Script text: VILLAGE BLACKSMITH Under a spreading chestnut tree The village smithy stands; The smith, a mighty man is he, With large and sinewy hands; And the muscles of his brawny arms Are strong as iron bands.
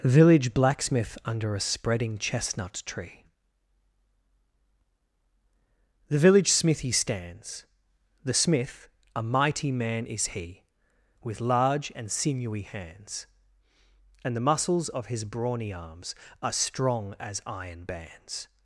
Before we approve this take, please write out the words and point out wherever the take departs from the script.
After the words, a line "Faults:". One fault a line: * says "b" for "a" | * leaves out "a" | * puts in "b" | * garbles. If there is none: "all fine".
VILLAGE BLACKSMITH Under a spreading chestnut tree The village smithy stands; The smith, a mighty man is he, With large and sinewy hands; And the muscles of his brawny arms Are strong as iron bands.
Faults:
all fine